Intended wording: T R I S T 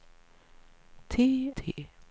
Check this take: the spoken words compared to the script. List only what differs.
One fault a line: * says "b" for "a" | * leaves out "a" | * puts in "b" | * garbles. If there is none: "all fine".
* leaves out "R I S"